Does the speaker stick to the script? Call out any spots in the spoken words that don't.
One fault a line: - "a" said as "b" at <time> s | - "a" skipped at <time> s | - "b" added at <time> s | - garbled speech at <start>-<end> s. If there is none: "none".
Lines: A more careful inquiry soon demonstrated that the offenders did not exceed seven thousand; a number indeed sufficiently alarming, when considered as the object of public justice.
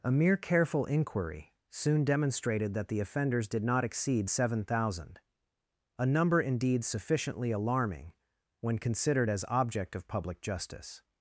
- "more" said as "mere" at 0.1 s
- "the" skipped at 9.4 s